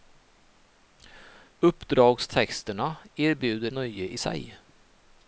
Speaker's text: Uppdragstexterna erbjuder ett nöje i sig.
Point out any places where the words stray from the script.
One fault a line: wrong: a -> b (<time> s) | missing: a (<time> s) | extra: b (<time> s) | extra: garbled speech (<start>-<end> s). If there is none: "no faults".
missing: ett (3.7 s)